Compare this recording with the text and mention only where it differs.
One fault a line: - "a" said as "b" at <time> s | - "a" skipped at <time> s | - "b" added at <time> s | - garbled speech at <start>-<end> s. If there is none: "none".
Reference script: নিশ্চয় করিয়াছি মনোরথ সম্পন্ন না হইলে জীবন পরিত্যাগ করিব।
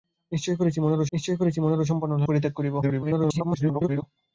- "নিশ্চয় করিয়াছি মনোরথ" added at 1.1 s
- "হইলে জীবন" skipped at 2.2 s
- garbled speech at 2.8-4.0 s